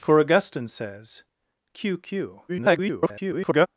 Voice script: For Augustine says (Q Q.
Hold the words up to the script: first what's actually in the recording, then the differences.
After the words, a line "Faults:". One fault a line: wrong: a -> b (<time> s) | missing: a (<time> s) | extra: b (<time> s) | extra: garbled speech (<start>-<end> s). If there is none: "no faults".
For Augustine says (Q Q. [garbled]
Faults:
extra: garbled speech (2.5-3.7 s)